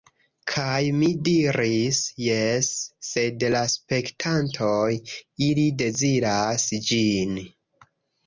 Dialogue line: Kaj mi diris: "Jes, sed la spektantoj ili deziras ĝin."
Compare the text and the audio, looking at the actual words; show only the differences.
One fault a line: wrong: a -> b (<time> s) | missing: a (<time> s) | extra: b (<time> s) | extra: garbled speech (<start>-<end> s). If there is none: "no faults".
no faults